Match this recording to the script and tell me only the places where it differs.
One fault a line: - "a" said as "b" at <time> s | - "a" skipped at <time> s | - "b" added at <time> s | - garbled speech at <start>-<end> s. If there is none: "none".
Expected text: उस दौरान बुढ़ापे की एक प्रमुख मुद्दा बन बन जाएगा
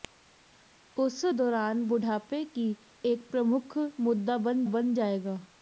none